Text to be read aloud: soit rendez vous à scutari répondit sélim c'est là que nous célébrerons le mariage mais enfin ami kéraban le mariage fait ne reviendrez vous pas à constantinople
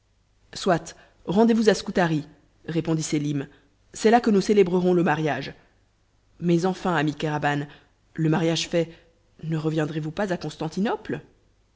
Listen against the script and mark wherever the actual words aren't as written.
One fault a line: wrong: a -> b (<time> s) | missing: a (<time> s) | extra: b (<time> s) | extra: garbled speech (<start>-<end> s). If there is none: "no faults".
no faults